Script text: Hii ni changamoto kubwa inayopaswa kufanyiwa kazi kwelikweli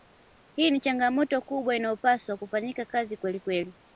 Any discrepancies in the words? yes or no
no